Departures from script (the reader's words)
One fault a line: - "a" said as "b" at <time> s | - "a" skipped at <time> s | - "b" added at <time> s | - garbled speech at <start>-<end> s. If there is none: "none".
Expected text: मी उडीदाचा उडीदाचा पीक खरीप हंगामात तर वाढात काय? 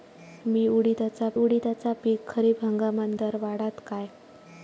none